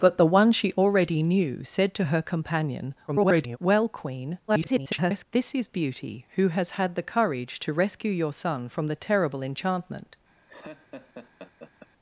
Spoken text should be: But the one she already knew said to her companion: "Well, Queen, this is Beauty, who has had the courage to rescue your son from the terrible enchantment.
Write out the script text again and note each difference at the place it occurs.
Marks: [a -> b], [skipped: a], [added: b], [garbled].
But the one she already knew said to her companion: [garbled] "Well, Queen, [garbled] this is Beauty, who has had the courage to rescue your son from the terrible enchantment.